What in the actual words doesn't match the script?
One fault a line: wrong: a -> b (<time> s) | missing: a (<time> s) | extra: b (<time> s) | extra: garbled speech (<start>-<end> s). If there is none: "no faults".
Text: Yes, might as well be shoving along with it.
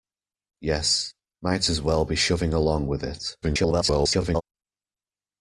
extra: garbled speech (3.4-4.4 s)